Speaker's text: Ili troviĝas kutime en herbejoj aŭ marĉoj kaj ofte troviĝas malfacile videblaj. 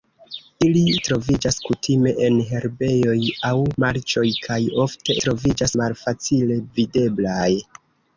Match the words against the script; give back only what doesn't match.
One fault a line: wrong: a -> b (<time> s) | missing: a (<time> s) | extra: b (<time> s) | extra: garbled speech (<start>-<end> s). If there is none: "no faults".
no faults